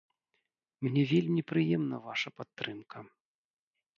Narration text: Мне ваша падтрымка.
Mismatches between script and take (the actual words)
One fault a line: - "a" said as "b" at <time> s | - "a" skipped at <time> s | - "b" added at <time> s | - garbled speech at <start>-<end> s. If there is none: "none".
- "вельмі прыемна" added at 1.1 s